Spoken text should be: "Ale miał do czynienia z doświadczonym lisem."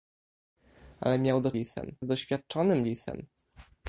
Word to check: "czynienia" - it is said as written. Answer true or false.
false